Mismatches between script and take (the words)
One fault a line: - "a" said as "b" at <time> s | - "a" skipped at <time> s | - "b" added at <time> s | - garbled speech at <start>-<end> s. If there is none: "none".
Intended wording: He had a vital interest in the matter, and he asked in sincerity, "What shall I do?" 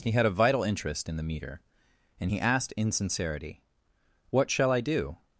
- "matter" said as "meter" at 1.2 s